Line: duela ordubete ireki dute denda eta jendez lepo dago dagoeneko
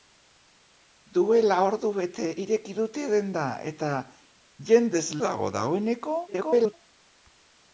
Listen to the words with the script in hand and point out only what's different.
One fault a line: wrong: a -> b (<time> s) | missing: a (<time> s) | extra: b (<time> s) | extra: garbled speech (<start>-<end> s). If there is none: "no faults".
missing: lepo (5.0 s)
extra: garbled speech (6.3-6.7 s)